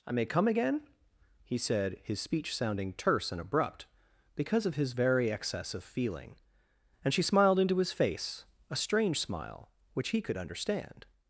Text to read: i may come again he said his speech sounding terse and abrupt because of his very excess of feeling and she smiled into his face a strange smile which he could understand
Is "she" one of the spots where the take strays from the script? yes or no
no